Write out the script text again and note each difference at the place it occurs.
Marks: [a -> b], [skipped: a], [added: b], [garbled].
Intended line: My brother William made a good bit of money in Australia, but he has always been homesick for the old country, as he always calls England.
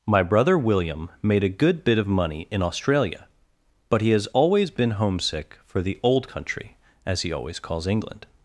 My brother William made a good bit of money in Australia, but he has always been homesick for the old country, as he always calls England.